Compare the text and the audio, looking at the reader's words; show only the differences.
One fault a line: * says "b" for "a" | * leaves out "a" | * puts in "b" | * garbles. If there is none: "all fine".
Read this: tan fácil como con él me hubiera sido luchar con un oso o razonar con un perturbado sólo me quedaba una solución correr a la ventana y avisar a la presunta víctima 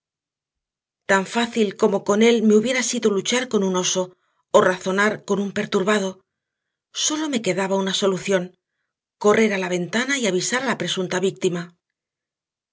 all fine